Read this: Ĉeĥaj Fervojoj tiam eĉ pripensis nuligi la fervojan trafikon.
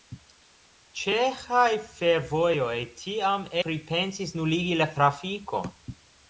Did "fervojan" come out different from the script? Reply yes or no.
yes